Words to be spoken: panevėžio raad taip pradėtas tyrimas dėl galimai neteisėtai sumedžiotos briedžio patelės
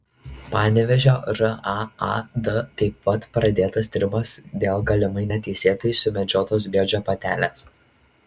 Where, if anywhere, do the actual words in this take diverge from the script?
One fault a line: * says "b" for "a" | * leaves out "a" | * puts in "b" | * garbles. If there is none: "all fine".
* puts in "pat"